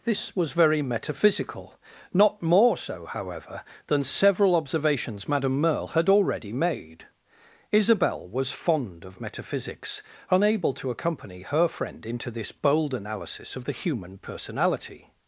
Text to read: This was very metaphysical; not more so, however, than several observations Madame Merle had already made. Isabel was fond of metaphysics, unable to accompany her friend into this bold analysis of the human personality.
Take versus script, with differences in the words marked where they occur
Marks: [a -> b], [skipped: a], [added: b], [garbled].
This was very metaphysical; not more so, however, than several observations Madame Merle had already made. Isabel was fond of metaphysics, unable to accompany her friend into this bold analysis of the human personality.